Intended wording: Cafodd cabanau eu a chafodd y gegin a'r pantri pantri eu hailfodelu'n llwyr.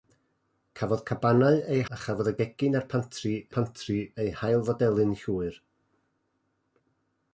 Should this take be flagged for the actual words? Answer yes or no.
no